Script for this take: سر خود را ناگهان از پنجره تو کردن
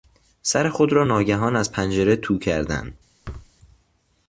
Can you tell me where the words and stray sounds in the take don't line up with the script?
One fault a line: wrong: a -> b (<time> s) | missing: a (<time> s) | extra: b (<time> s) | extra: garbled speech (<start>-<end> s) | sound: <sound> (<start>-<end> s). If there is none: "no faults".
sound: thud (3.2-3.5 s)